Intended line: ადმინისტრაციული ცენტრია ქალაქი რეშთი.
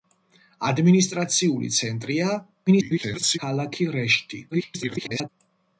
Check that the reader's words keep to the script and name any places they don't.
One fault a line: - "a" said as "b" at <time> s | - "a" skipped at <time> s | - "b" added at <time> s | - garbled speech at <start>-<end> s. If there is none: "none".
- garbled speech at 2.7-3.4 s
- garbled speech at 4.5-5.3 s